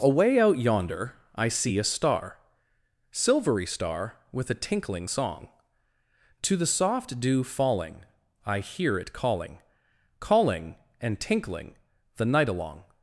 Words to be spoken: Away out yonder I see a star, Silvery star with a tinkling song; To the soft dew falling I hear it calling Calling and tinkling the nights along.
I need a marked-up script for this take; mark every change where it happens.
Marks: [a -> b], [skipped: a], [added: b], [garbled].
Away out yonder I see a star, Silvery star with a tinkling song; To the soft dew falling I hear it calling Calling and tinkling the [nights -> night] along.